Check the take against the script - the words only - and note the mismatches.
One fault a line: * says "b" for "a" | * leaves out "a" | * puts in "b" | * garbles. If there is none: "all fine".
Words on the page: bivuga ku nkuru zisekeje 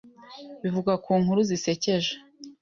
all fine